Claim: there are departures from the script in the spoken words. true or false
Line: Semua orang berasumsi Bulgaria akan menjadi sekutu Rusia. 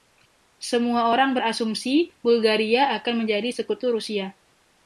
false